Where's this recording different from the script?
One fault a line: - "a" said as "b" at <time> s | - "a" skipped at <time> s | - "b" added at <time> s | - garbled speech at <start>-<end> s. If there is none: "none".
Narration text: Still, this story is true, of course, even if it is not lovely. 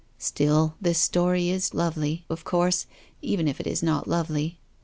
- "true" said as "lovely" at 1.7 s